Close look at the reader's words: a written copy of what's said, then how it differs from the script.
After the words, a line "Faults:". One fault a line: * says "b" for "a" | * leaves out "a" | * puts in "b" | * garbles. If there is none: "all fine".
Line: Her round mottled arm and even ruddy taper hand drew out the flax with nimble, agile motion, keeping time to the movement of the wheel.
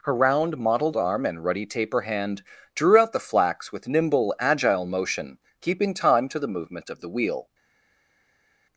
Her round mottled arm and ruddy taper hand drew out the flax with nimble, agile motion, keeping time to the movement of the wheel.
Faults:
* leaves out "even"